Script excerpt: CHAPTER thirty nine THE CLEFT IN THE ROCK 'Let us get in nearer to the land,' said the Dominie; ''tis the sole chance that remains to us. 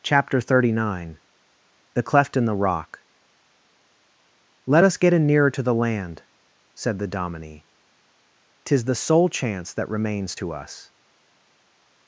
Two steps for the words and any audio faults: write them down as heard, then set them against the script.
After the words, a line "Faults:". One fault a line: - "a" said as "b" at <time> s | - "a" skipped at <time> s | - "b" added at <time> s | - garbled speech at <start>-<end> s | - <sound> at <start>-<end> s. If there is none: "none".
CHAPTER thirty nine THE CLEFT IN THE ROCK 'Let us get in nearer to the land,' said the Dominie; ''tis the sole chance that remains to us.
Faults:
none